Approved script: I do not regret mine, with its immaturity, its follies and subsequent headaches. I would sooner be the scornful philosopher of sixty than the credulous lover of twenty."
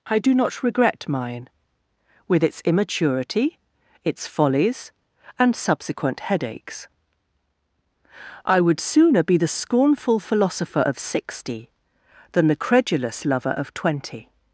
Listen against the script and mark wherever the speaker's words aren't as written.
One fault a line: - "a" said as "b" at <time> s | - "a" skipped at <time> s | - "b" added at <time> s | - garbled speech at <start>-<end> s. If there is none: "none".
none